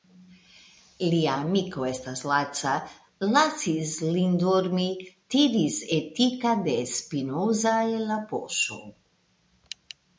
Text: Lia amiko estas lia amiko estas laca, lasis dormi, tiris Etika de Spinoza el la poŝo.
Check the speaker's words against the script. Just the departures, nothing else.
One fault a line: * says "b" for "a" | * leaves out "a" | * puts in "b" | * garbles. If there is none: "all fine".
* leaves out "lia amiko estas"
* puts in "lin"